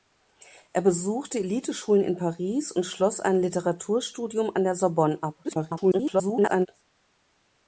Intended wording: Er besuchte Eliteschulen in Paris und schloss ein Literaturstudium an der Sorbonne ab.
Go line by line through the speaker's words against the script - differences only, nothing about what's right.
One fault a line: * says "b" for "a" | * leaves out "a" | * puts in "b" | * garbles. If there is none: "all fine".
* garbles